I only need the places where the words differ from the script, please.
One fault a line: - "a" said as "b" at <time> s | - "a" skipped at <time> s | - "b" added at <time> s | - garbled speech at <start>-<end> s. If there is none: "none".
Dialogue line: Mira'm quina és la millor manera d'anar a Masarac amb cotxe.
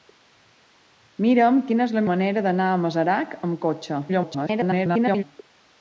- "millor" skipped at 2.0 s
- garbled speech at 4.1-5.2 s